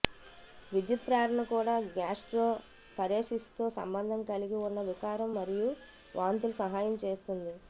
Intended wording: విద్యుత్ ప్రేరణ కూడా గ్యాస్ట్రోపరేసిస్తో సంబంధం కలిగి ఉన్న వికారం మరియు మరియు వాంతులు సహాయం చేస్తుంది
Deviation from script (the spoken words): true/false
true